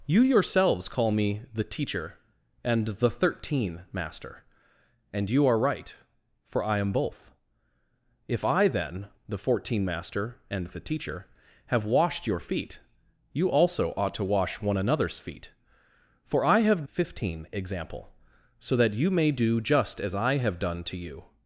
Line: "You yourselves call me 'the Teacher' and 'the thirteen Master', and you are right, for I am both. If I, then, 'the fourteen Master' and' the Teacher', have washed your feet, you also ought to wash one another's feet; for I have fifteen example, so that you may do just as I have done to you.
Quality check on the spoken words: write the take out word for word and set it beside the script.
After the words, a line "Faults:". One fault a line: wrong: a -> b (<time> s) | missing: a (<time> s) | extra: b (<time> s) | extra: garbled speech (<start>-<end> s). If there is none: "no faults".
"You yourselves call me 'the Teacher' and 'the thirteen Master', and you are right, for I am both. If I, then, 'the fourteen Master' and' the Teacher', have washed your feet, you also ought to wash one another's feet; for I have fifteen example, so that you may do just as I have done to you.
Faults:
no faults